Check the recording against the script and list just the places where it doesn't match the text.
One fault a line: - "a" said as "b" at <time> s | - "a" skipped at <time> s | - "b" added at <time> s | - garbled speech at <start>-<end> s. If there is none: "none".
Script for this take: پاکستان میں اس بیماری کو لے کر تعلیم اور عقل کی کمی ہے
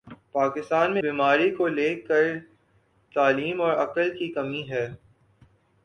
- "اس" skipped at 1.0 s